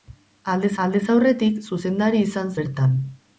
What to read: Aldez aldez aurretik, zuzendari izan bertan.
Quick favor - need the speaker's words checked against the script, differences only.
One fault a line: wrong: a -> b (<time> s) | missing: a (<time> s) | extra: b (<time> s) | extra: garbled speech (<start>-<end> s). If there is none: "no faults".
no faults